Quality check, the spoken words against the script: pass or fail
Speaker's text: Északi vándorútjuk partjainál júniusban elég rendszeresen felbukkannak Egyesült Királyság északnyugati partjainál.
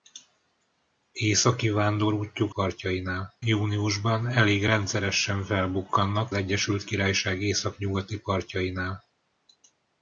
pass